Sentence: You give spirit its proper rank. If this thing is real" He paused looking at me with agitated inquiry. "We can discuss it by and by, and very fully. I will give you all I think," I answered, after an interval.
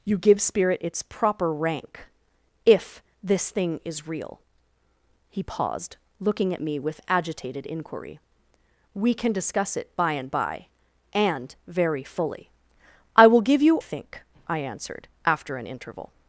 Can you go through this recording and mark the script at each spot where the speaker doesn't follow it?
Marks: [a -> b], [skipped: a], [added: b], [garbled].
You give spirit its proper rank. If this thing is real" He paused looking at me with agitated inquiry. "We can discuss it by and by, and very fully. I will give you [skipped: all I] think," I answered, after an interval.